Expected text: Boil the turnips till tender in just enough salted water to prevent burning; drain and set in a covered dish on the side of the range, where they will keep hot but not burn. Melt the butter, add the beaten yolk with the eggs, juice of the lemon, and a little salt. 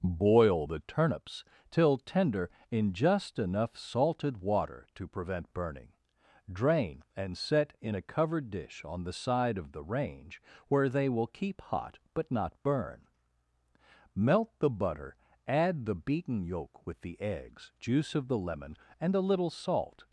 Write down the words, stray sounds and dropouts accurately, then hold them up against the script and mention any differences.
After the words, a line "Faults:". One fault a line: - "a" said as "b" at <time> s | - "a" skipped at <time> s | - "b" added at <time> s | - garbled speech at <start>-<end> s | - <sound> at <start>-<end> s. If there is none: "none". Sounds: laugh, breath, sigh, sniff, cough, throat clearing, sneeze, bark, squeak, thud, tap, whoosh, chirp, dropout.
Boil the turnips till tender in just enough salted water to prevent burning; drain and set in a covered dish on the side of the range, where they will keep hot but not burn. Melt the butter, add the beaten yolk with the eggs, juice of the lemon, and a little salt.
Faults:
none